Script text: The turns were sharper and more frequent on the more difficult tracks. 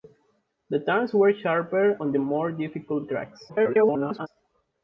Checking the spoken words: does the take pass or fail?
fail